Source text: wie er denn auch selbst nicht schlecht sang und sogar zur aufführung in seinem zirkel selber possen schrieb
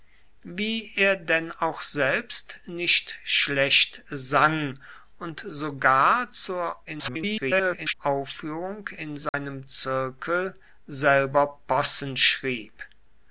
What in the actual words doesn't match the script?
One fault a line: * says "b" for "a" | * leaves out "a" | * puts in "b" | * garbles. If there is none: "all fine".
* garbles